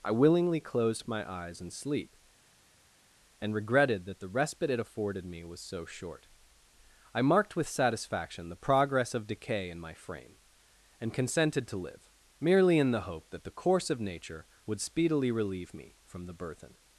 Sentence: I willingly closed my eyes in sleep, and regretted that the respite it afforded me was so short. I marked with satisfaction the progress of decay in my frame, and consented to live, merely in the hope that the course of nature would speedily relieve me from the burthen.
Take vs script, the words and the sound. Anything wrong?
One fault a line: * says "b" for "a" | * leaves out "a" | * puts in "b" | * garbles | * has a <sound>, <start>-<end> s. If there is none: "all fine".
all fine